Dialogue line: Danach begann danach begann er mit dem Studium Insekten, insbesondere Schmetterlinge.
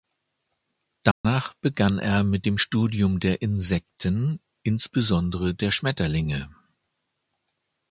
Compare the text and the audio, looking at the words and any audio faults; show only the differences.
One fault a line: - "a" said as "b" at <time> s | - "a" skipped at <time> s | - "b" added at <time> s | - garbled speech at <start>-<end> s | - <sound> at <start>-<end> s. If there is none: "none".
- dropout at 1.1-1.2 s
- "danach begann" skipped at 2.0 s
- "der" added at 3.2 s
- "der" added at 5.5 s